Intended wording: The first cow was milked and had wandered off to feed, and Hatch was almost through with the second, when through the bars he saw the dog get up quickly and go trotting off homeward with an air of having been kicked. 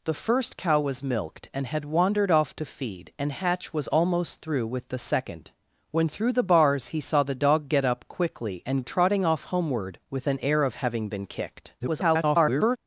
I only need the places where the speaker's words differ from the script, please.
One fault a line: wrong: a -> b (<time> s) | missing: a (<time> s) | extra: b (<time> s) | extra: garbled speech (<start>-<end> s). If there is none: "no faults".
missing: go (8.8 s)
extra: garbled speech (11.8-12.8 s)